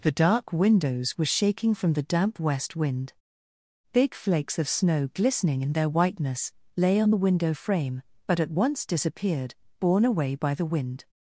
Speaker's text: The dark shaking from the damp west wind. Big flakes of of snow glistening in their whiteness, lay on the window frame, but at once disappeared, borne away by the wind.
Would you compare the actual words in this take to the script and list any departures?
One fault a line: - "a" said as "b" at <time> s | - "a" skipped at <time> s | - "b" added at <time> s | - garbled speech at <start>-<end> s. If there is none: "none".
- "windows were" added at 0.5 s
- "of" skipped at 4.7 s